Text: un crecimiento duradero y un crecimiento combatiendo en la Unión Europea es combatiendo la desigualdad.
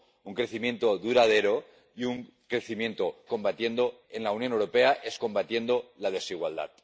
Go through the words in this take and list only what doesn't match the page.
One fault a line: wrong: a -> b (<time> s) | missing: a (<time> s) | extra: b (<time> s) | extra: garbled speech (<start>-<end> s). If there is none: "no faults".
no faults